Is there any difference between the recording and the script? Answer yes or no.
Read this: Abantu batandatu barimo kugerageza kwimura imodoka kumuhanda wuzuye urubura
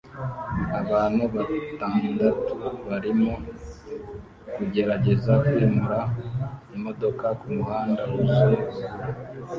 no